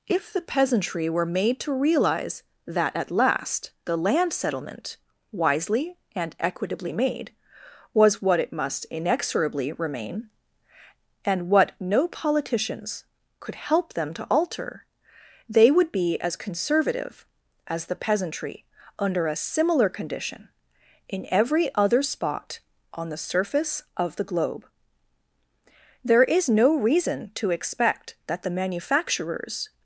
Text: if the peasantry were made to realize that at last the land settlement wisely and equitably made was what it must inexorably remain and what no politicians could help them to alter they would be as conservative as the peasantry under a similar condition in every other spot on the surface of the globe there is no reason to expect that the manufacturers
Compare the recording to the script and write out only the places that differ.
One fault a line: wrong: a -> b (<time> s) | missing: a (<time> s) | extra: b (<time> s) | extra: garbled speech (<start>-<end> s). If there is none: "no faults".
no faults